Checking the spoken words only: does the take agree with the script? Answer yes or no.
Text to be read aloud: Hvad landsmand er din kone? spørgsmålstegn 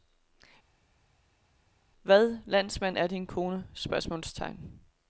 yes